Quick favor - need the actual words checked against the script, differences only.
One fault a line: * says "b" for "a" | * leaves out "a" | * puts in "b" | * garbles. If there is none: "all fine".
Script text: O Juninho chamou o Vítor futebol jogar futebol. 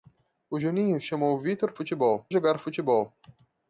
all fine